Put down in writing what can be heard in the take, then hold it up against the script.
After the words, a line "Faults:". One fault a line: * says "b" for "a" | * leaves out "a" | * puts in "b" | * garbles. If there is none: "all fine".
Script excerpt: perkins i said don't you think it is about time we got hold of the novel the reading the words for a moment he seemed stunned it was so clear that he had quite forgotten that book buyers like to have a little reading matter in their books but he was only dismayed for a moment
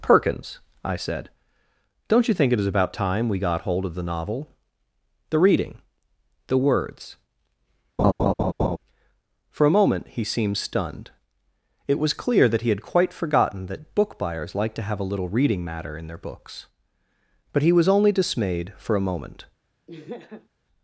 perkins i said don't you think it is about time we got hold of the novel the reading the words for a moment he seemed stunned it was clear that he had quite forgotten that book buyers like to have a little reading matter in their books but he was only dismayed for a moment
Faults:
* leaves out "so"